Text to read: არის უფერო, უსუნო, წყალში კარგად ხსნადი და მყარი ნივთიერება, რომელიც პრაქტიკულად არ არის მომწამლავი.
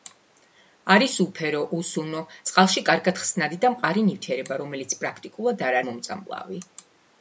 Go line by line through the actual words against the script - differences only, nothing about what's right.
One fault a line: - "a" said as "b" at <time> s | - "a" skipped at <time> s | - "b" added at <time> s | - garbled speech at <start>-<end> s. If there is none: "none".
- "არის" skipped at 5.8 s